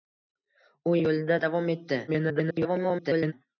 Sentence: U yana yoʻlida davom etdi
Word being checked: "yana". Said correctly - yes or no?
no